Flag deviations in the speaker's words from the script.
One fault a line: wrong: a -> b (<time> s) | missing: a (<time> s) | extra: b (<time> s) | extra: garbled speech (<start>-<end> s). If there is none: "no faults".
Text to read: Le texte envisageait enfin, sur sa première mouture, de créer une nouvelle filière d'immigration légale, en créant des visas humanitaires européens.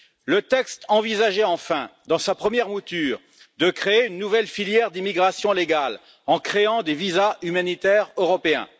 wrong: sur -> dans (2.1 s)